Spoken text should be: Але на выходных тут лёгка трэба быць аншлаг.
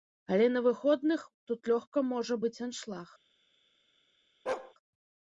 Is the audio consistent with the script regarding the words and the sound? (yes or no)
no